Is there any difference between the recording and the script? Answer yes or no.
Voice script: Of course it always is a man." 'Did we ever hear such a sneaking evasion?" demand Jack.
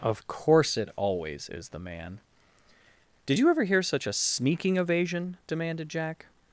yes